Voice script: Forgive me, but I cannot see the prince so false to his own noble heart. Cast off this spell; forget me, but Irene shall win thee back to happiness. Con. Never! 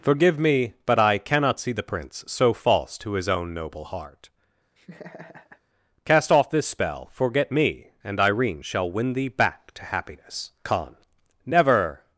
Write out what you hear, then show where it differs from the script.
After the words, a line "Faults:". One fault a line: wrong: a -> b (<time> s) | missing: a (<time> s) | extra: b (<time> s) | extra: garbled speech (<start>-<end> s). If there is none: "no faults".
Forgive me, but I cannot see the prince so false to his own noble heart. Cast off this spell; forget me, and Irene shall win thee back to happiness. Con. Never!
Faults:
wrong: but -> and (8.0 s)